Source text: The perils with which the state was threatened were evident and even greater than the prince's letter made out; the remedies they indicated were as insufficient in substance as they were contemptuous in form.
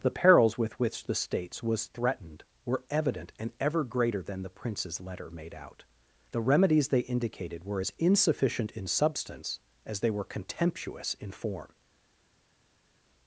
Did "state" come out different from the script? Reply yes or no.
yes